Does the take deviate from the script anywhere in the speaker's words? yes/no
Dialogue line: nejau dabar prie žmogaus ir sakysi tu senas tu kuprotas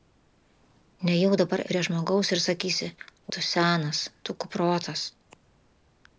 no